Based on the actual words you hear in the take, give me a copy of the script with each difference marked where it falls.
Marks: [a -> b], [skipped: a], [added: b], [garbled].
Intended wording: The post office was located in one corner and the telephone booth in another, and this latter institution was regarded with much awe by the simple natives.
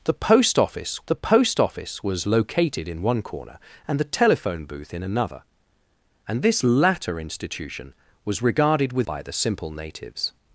The post office [added: the post office] was located in one corner and the telephone booth in another, and this latter institution was regarded with [skipped: much awe] by the simple natives.